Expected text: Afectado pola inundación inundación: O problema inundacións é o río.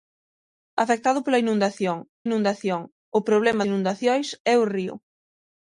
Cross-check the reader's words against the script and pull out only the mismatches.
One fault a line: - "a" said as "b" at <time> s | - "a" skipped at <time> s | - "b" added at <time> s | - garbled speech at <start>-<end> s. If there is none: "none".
none